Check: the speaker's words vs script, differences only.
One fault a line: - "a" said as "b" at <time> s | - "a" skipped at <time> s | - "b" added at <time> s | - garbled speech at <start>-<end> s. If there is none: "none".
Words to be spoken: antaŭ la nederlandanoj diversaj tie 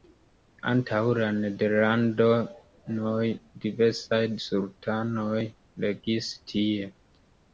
- "sultanoj regis" added at 4.5 s